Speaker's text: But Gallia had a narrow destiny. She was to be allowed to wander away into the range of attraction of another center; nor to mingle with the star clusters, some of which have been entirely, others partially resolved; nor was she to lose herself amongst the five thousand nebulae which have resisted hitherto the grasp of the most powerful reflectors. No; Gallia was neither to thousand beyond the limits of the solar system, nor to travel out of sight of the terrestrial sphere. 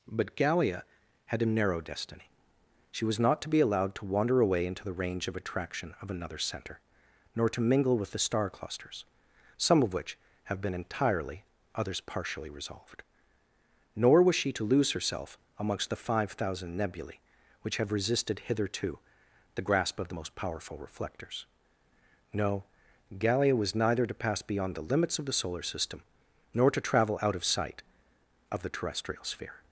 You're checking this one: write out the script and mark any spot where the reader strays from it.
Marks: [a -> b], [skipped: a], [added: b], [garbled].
But Gallia had a narrow destiny. She was [added: not] to be allowed to wander away into the range of attraction of another center; nor to mingle with the star clusters, some of which have been entirely, others partially resolved; nor was she to lose herself amongst the five thousand nebulae which have resisted hitherto the grasp of the most powerful reflectors. No; Gallia was neither to [thousand -> pass] beyond the limits of the solar system, nor to travel out of sight of the terrestrial sphere.